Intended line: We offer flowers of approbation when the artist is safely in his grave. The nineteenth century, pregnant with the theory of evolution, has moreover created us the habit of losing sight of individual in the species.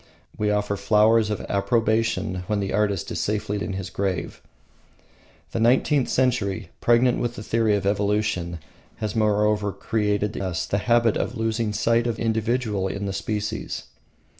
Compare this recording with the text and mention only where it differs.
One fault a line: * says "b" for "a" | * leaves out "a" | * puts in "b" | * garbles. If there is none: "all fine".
all fine